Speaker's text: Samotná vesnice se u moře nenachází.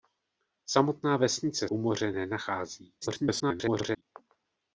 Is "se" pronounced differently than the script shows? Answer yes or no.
yes